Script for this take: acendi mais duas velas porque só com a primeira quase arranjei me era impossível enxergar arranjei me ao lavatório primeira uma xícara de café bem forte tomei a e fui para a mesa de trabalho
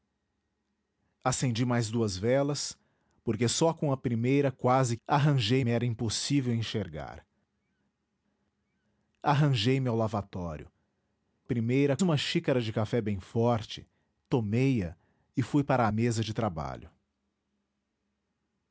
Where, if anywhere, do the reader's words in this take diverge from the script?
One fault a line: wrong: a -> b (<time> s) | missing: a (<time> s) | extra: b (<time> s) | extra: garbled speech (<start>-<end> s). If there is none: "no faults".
no faults